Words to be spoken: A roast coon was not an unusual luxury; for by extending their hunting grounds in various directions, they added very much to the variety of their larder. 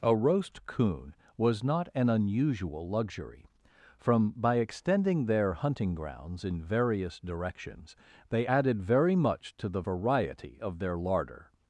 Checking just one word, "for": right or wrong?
wrong